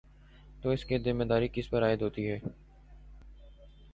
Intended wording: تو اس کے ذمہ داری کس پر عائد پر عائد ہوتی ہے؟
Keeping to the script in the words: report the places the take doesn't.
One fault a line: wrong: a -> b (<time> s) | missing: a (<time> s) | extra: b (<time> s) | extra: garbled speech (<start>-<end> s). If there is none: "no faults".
wrong: کے -> کی (0.8 s)
missing: پر عائد (2.0 s)